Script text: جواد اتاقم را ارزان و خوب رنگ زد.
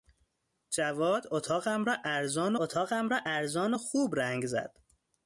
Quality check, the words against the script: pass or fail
fail